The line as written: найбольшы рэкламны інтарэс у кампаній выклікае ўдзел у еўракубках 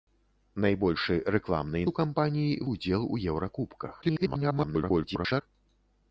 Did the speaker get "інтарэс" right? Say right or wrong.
wrong